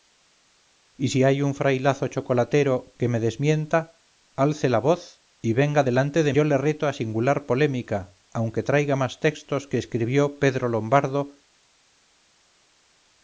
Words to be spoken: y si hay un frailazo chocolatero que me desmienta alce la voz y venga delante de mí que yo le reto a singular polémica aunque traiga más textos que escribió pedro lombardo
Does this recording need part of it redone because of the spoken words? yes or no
yes